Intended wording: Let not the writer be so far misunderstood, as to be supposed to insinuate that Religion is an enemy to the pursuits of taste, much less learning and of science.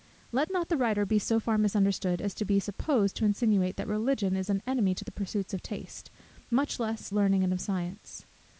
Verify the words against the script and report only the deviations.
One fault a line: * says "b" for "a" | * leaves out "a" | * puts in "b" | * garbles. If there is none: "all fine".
all fine